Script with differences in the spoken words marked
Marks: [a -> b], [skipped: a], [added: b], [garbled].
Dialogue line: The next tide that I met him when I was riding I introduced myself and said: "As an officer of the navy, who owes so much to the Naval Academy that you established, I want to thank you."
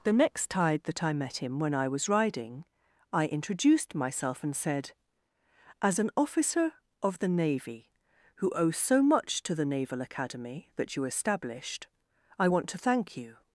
The next tide that I met him when I was riding I introduced myself and said: "As an officer of the navy, who owes so much to the Naval Academy that you established, I want to thank you."